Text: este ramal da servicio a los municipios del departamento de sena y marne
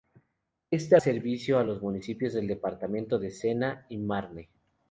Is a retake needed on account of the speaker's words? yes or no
yes